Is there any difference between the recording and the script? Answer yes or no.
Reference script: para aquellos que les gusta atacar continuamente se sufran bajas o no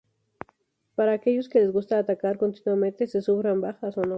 no